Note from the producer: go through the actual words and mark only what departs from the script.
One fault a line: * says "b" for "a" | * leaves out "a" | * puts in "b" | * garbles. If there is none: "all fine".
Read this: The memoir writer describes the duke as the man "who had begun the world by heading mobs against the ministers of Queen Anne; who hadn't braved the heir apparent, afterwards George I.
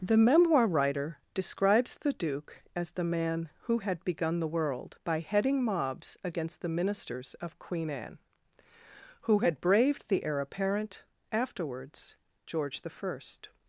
* says "had" for "hadn't"